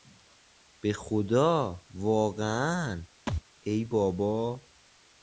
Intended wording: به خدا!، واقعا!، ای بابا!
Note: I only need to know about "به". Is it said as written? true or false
true